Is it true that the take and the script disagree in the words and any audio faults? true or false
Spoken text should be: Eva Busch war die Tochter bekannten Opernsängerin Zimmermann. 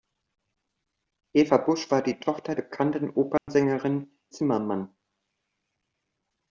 true